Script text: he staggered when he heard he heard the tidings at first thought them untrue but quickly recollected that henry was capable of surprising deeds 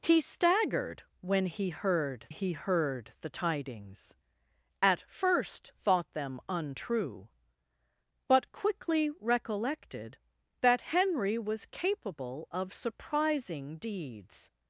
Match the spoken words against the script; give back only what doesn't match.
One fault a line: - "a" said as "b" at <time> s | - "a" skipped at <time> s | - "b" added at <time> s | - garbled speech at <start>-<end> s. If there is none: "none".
none